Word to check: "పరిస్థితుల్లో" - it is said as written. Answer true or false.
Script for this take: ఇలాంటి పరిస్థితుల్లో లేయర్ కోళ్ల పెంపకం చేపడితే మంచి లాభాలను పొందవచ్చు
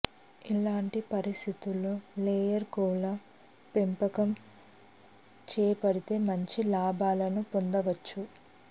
true